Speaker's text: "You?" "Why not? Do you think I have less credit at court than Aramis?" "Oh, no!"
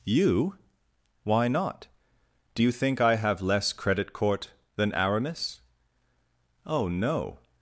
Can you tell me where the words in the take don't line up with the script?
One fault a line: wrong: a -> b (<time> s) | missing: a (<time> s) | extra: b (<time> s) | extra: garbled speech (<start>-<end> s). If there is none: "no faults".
missing: at (4.1 s)